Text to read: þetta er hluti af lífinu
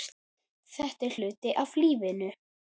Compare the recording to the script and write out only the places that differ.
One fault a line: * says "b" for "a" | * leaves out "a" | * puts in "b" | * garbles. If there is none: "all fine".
all fine